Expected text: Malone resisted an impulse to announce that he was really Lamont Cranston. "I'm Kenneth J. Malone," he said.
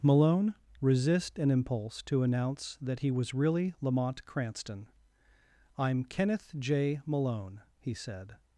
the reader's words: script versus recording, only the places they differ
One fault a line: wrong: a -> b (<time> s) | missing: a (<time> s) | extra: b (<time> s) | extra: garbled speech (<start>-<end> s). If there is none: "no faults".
wrong: resisted -> resist (0.8 s)